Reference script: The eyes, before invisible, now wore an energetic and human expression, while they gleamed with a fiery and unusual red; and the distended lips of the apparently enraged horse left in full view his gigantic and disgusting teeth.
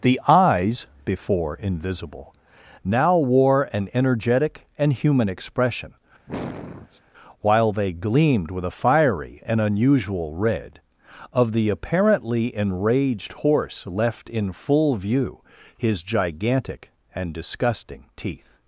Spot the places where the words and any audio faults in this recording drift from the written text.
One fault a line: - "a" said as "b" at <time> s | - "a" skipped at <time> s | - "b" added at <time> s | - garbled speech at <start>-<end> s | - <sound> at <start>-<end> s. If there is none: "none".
- sniff at 6.3-7.0 s
- "and the distended lips" skipped at 10.8 s